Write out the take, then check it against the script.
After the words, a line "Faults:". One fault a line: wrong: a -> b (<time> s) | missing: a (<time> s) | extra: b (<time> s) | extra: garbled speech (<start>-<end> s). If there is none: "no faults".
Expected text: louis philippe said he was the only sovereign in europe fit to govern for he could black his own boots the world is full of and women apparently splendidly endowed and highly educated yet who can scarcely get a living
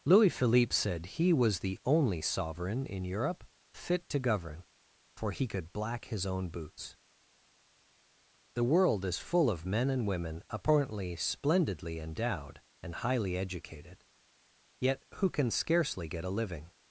louis philippe said he was the only sovereign in europe fit to govern for he could black his own boots the world is full of men and women apparently splendidly endowed and highly educated yet who can scarcely get a living
Faults:
extra: men (9.6 s)